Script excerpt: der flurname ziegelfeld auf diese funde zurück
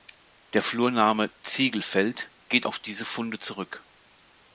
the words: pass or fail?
fail